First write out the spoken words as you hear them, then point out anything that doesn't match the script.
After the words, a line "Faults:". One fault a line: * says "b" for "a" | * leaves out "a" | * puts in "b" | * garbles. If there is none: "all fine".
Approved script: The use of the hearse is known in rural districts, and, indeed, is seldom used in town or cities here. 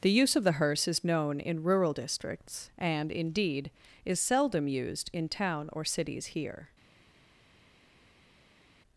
The use of the hearse is known in rural districts, and, indeed, is seldom used in town or cities here.
Faults:
all fine